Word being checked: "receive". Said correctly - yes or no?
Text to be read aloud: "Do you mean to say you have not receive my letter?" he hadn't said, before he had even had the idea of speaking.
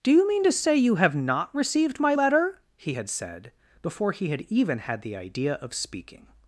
no